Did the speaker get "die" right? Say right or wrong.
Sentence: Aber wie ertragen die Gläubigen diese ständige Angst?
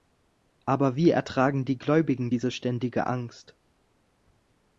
right